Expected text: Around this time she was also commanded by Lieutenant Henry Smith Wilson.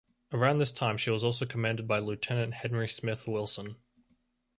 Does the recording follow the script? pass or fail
pass